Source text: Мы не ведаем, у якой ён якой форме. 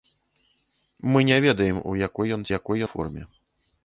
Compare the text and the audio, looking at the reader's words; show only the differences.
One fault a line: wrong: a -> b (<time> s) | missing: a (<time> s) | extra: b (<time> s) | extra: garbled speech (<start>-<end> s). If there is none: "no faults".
no faults